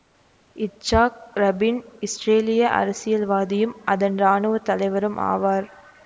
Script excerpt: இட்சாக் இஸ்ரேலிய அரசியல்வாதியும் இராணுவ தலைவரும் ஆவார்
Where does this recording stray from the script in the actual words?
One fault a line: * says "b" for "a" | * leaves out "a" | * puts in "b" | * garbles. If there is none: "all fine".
* puts in "ரபீன்"
* puts in "அதன்"